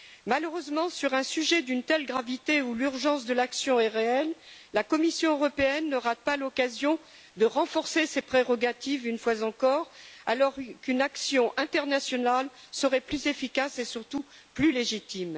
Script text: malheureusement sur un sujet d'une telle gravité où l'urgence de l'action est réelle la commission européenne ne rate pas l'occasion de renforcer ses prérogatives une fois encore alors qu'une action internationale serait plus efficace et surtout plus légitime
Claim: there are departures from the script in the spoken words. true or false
false